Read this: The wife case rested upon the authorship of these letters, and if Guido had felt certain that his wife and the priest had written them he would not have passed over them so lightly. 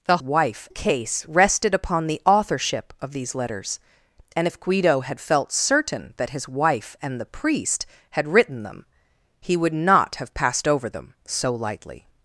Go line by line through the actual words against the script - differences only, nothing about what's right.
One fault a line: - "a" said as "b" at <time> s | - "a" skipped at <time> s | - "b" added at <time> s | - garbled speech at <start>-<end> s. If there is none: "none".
none